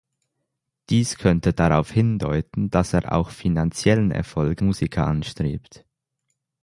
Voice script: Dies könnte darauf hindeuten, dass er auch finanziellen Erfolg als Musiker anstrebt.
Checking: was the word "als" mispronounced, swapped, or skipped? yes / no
yes